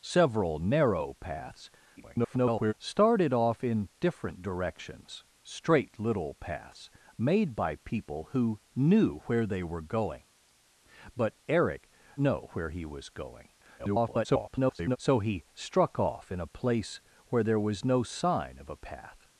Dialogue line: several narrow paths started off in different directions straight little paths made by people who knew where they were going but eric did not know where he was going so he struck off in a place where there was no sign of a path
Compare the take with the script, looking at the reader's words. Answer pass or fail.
fail